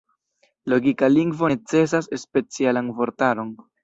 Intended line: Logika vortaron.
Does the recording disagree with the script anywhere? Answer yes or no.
yes